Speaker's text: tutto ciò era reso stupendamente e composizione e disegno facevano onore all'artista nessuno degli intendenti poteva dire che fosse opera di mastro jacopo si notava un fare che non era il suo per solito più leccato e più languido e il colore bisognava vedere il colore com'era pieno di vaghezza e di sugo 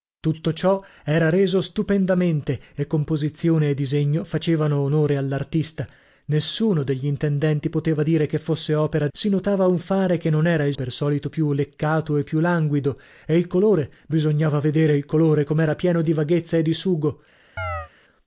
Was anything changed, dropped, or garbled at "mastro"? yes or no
yes